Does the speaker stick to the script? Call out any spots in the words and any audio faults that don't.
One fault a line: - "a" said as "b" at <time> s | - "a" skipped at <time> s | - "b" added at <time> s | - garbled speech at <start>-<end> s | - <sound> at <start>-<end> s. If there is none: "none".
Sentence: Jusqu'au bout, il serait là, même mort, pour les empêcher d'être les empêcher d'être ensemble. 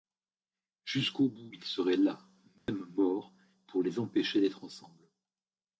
- dropout at 2.6-2.7 s
- "les empêcher d'être" skipped at 4.6 s